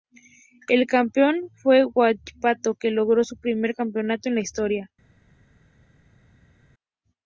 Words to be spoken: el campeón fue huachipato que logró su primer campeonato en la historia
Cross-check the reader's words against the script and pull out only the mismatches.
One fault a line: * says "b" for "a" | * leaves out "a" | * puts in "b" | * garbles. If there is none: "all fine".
all fine